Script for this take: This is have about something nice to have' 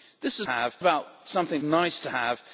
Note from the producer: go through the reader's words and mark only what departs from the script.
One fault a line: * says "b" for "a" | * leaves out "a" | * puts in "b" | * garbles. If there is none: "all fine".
all fine